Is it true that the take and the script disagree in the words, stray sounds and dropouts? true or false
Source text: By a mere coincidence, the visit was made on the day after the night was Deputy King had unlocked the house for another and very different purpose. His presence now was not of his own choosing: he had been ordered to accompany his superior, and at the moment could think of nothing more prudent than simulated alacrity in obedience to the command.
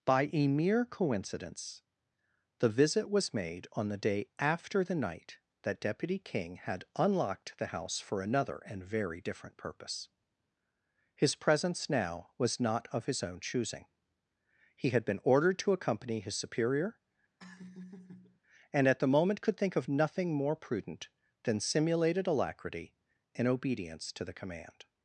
true